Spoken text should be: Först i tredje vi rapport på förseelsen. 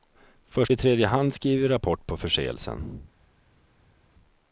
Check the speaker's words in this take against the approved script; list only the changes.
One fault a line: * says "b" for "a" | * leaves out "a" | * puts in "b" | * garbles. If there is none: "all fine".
* puts in "hand skriver"